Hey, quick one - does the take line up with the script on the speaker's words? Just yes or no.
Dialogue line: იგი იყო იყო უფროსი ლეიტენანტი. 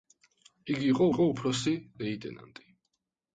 yes